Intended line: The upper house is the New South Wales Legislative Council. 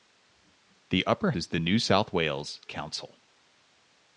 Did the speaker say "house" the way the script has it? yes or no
no